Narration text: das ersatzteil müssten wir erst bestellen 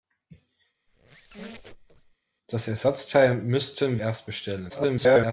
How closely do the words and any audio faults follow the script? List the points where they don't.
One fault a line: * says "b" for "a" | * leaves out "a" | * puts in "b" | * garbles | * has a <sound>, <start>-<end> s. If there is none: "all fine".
* has a squeak, 0.9-2.2 s
* leaves out "wir"
* garbles